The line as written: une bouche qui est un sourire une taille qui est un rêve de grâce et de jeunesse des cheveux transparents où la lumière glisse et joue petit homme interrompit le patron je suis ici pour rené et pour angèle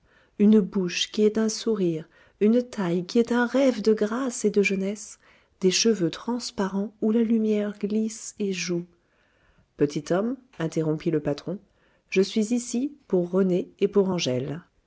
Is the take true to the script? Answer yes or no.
yes